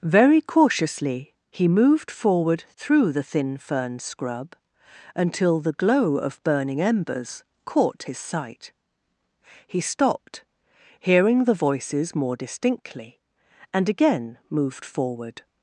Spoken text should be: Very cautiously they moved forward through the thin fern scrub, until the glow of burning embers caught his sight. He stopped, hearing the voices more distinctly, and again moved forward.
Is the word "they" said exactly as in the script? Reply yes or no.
no